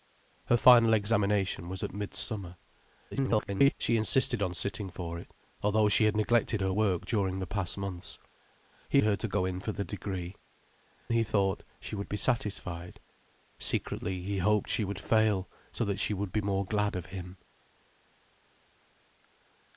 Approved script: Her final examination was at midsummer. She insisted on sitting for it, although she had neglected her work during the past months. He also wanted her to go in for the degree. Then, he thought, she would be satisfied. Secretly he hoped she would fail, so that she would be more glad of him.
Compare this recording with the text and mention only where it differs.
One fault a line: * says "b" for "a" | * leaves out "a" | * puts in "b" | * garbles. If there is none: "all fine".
* garbles
* leaves out "also wanted"
* leaves out "Then"